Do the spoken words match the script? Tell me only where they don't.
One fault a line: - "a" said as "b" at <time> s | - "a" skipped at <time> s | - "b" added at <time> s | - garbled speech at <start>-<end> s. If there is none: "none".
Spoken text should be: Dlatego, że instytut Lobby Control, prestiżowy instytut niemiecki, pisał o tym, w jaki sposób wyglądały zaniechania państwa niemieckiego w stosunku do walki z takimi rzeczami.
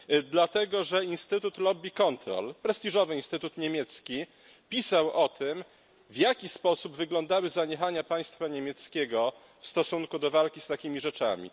none